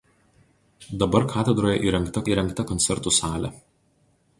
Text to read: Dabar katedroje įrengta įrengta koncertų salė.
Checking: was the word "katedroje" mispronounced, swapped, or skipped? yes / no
no